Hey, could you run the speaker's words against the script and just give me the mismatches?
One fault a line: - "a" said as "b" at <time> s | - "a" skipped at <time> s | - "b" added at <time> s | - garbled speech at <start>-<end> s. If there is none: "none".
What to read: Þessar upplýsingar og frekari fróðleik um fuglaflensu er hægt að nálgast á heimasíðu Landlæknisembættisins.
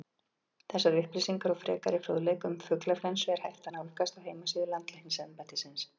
none